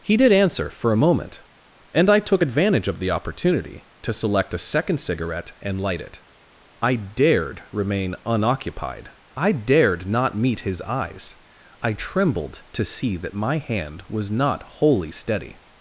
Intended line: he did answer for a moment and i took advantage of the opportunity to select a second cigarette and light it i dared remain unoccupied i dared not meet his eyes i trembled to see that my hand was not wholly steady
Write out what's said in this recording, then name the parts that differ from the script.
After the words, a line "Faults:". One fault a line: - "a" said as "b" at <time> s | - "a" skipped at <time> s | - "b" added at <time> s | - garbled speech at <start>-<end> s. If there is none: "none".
he did answer for a moment and i took advantage of the opportunity to select a second cigarette and light it i dared remain unoccupied i dared not meet his eyes i trembled to see that my hand was not wholly steady
Faults:
none